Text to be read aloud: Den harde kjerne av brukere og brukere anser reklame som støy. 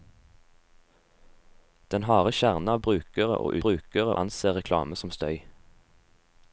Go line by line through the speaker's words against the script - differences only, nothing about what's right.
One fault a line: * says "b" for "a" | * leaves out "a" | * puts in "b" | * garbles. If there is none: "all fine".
all fine